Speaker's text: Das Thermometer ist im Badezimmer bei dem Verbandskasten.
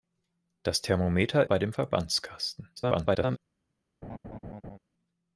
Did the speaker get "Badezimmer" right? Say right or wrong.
wrong